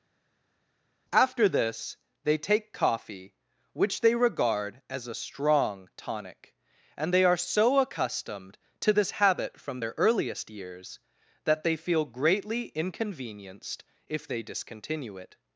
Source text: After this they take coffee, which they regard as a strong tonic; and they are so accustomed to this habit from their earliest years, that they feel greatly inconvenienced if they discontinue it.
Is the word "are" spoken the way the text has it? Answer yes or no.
yes